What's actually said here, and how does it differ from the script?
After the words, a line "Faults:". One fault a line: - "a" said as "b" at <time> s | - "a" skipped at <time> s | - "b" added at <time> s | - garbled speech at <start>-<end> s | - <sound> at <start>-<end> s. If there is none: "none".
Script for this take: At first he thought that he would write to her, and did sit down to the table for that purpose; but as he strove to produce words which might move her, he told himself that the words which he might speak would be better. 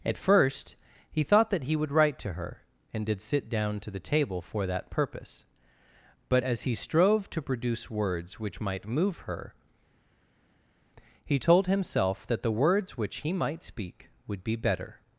At first he thought that he would write to her, and did sit down to the table for that purpose; but as he strove to produce words which might move her, he told himself that the words which he might speak would be better.
Faults:
none